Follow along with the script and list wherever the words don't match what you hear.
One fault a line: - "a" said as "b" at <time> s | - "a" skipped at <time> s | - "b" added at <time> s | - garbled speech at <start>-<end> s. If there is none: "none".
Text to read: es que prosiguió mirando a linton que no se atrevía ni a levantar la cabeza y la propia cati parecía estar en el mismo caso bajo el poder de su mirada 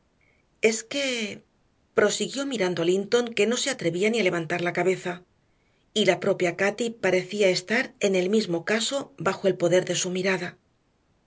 none